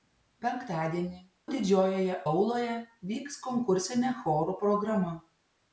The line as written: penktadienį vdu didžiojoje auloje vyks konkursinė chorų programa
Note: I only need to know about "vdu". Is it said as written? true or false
false